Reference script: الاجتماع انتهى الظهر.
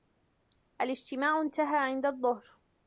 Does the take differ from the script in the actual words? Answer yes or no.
yes